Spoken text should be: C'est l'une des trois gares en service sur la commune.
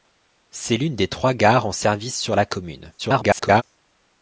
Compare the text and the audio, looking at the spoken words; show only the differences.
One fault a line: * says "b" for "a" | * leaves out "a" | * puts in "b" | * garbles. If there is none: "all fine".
* garbles